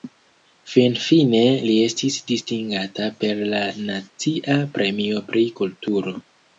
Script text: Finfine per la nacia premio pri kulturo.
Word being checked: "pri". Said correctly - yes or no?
yes